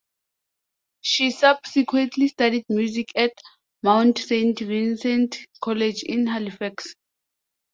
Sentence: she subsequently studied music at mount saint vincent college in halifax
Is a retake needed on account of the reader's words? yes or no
no